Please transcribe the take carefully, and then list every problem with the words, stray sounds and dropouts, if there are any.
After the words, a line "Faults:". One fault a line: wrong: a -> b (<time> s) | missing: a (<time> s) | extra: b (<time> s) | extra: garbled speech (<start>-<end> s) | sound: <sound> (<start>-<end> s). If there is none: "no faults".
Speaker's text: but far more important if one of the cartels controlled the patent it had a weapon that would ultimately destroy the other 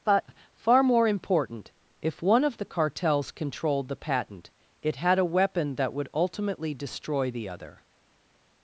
but far more important if one of the cartels controlled the patent it had a weapon that would ultimately destroy the other
Faults:
no faults